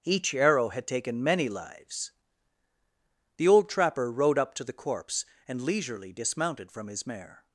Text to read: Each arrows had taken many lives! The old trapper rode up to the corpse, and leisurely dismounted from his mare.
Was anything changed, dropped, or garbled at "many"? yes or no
no